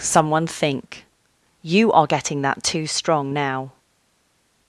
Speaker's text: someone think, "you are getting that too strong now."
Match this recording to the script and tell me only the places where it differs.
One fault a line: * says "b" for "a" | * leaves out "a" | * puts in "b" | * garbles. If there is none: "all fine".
all fine